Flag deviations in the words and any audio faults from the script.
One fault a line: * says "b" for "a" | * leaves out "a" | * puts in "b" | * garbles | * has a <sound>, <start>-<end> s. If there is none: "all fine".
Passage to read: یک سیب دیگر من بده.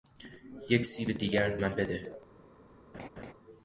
* has a laugh, 2.9-3.3 s